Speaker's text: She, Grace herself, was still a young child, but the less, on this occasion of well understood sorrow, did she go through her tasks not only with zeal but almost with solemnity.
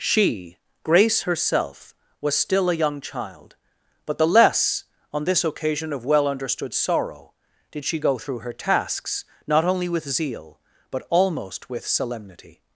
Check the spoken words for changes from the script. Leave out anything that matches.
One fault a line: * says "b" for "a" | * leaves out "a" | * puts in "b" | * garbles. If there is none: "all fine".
all fine